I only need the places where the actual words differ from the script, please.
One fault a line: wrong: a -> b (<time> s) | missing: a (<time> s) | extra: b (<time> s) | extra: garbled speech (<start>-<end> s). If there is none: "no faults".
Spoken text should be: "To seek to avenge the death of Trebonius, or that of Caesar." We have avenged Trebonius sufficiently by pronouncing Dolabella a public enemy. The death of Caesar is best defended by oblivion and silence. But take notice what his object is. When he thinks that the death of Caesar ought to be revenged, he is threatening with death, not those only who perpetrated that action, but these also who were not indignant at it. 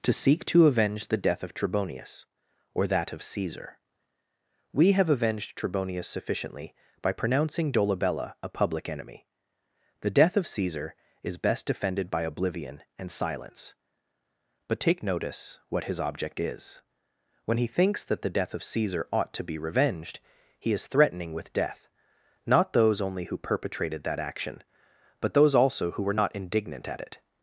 wrong: these -> those (25.4 s)